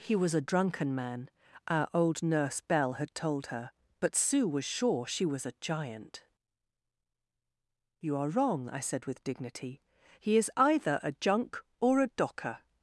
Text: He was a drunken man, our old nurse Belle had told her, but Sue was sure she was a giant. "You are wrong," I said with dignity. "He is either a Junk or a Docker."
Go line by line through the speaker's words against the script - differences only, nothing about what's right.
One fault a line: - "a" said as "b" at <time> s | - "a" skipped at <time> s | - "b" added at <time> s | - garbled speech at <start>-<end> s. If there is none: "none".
none